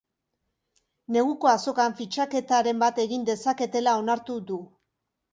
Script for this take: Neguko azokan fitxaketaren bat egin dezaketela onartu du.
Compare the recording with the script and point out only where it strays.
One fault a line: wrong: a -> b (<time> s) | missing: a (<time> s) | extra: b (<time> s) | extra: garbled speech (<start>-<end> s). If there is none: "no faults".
no faults